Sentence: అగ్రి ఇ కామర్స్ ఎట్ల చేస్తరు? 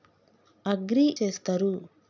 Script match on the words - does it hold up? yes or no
no